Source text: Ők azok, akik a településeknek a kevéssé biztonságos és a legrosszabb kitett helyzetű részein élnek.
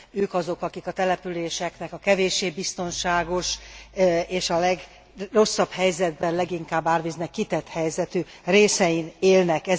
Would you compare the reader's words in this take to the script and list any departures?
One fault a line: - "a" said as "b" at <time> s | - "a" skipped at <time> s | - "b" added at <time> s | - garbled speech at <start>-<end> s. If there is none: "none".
- "helyzetben leginkább árvíznek" added at 5.7 s